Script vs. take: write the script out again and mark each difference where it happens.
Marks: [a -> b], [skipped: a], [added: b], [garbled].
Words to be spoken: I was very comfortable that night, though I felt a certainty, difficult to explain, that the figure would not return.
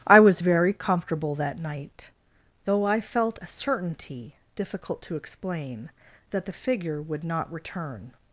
I was very comfortable that night, though I felt a certainty, difficult to explain, that the figure would not return.